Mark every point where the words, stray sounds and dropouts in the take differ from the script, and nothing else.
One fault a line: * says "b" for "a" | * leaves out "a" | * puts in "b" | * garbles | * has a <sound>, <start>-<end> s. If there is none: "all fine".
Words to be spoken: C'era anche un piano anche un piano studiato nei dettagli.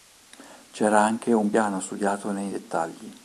* leaves out "anche un piano"